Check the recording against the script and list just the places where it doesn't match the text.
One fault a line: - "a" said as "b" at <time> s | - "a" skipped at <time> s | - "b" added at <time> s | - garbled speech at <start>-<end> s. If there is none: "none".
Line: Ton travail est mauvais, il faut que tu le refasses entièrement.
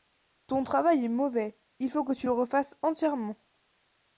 none